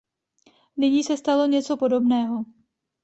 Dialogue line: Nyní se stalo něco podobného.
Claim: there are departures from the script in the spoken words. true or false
false